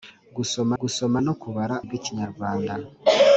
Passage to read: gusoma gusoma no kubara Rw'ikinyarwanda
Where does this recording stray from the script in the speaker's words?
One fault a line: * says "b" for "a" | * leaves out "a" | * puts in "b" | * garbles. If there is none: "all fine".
all fine